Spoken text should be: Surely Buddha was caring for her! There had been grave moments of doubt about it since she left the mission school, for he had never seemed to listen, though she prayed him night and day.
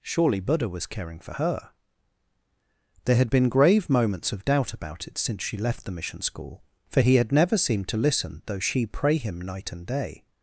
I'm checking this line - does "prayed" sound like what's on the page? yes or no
no